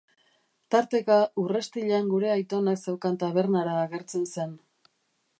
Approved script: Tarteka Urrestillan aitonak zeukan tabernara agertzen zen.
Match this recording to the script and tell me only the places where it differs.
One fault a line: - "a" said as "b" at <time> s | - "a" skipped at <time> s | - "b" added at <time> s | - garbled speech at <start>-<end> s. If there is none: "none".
- "gure" added at 2.1 s